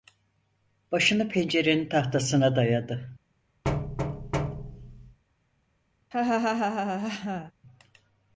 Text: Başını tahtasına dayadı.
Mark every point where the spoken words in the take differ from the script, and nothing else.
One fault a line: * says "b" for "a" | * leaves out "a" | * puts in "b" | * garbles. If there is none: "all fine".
* puts in "pencerenin"